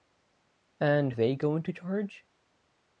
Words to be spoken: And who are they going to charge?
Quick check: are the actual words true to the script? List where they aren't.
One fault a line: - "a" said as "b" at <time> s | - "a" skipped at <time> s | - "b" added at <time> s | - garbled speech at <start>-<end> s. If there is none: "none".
- "who are" skipped at 1.1 s